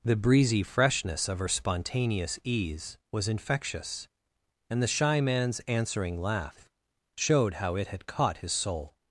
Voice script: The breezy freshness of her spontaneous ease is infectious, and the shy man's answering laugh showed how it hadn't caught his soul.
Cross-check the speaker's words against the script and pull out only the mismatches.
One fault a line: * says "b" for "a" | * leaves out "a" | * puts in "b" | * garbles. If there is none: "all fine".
* says "was" for "is"
* says "had" for "hadn't"